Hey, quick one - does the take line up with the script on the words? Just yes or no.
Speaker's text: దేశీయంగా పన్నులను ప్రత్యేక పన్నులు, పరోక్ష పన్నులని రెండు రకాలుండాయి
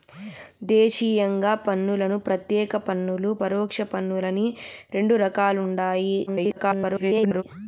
no